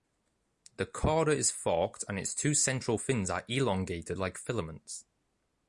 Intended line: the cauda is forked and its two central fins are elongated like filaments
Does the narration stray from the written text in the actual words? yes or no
no